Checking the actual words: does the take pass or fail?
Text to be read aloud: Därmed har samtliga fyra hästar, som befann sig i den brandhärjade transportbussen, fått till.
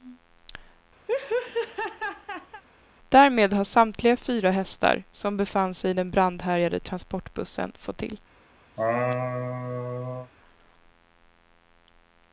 pass